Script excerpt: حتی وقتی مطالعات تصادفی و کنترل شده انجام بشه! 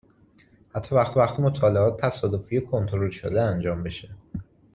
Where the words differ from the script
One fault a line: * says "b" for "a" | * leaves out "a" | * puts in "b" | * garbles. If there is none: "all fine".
* puts in "وقتی"